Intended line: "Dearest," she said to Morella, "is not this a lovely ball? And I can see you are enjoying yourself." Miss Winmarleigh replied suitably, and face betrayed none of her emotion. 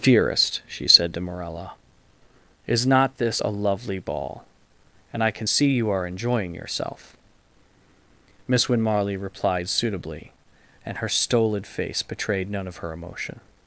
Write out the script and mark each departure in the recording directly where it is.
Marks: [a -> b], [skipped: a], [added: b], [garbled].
"Dearest," she said to Morella, "is not this a lovely ball? And I can see you are enjoying yourself." Miss Winmarleigh replied suitably, and [added: her stolid] face betrayed none of her emotion.